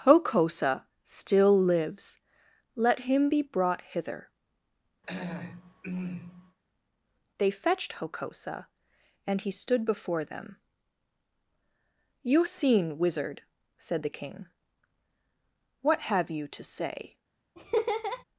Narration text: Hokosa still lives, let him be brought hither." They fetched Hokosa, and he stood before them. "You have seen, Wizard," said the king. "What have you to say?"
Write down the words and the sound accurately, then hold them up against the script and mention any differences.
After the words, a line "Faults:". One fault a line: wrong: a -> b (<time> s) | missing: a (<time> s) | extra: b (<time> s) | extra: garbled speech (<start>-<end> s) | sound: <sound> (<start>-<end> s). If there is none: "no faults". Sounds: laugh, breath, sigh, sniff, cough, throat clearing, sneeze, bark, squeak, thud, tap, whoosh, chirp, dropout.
Hokosa still lives, let him be brought hither." They fetched Hokosa, and he stood before them. "You seen, Wizard," said the king. "What have you to say?"
Faults:
sound: throat clearing (5.0-6.6 s)
missing: have (12.4 s)
sound: laugh (17.6-18.2 s)